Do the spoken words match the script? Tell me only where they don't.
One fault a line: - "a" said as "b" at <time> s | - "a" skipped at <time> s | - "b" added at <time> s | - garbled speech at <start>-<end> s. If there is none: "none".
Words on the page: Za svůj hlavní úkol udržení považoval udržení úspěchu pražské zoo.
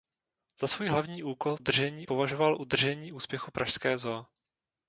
none